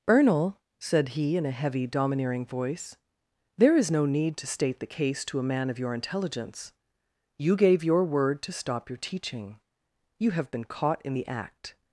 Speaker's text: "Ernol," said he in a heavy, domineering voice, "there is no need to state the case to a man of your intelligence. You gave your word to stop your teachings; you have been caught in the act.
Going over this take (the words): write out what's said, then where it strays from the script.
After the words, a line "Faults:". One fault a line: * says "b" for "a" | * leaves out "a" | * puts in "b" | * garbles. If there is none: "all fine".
"Ernol," said he in a heavy, domineering voice, "there is no need to state the case to a man of your intelligence. You gave your word to stop your teaching; you have been caught in the act.
Faults:
* says "teaching" for "teachings"